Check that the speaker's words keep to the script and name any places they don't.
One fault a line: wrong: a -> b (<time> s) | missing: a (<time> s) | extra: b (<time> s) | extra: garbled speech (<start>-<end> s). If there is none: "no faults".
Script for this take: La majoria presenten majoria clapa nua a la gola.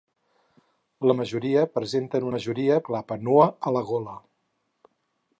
no faults